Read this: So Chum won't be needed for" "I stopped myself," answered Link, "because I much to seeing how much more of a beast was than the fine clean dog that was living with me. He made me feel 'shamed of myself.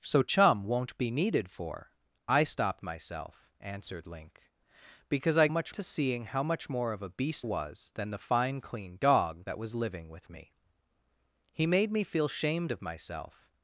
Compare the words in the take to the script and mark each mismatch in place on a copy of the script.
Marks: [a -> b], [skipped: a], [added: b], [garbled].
So Chum won't be needed for" "I stopped myself," answered Link, "because I much to seeing how much more of a beast was than the fine clean dog that was living with me. He made me feel 'shamed of myself.